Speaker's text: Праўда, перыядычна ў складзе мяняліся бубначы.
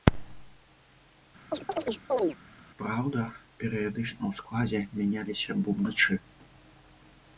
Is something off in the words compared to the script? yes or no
no